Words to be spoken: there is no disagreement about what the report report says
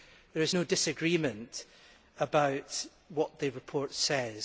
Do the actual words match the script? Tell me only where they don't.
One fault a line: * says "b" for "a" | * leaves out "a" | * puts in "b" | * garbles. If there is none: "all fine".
* leaves out "report"